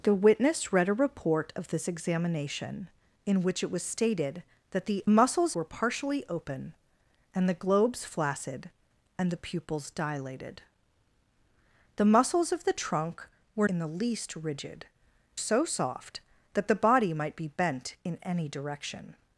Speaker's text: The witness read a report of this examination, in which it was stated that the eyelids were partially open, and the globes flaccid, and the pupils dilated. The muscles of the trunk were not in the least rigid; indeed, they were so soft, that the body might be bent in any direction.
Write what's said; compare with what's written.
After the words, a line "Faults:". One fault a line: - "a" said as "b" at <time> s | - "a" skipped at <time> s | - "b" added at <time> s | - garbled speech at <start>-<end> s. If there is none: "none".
The witness read a report of this examination, in which it was stated that the muscles were partially open, and the globes flaccid, and the pupils dilated. The muscles of the trunk were in the least rigid; so soft, that the body might be bent in any direction.
Faults:
- "eyelids" said as "muscles" at 5.1 s
- "not" skipped at 13.7 s
- "indeed they were" skipped at 14.9 s